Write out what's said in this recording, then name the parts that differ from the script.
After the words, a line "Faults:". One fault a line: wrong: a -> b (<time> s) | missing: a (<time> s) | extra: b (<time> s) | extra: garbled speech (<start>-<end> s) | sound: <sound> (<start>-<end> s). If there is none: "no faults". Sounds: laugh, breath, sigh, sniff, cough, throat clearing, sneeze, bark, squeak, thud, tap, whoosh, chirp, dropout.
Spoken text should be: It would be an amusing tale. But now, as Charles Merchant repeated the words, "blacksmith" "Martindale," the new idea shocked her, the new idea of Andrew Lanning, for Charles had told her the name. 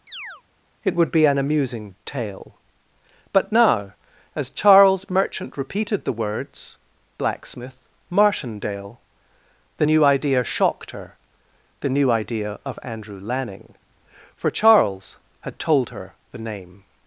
It would be an amusing tale. But now, as Charles Merchant repeated the words, "blacksmith" "Martindale," the new idea shocked her, the new idea of Andrew Lanning, for Charles had told her the name.
Faults:
sound: chirp (0.1-0.4 s)